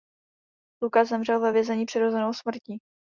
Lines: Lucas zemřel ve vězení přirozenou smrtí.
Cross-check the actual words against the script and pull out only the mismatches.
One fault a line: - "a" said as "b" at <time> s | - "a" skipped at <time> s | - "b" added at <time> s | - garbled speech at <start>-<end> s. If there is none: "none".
none